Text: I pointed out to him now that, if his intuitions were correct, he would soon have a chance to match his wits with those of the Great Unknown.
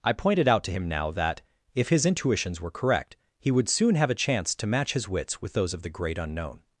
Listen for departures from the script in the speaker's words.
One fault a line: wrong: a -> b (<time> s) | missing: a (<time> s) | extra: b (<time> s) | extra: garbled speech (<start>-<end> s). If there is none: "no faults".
no faults